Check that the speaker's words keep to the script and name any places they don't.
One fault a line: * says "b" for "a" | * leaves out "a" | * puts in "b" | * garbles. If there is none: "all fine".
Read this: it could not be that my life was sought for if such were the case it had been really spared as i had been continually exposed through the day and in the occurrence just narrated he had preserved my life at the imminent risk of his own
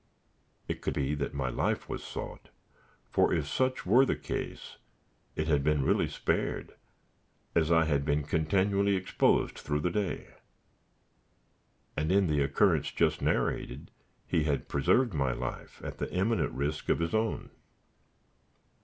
* leaves out "not"